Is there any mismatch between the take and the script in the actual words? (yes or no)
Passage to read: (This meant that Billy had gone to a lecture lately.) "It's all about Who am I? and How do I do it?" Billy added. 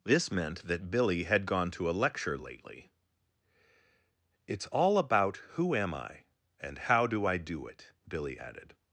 no